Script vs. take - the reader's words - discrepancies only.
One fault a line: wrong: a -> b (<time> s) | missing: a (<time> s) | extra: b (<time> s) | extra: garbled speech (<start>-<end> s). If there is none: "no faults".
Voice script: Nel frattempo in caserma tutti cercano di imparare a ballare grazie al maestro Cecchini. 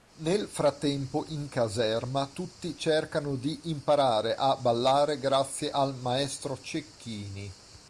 no faults